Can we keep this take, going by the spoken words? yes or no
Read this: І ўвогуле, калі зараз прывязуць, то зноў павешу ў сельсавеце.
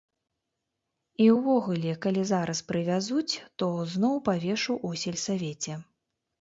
yes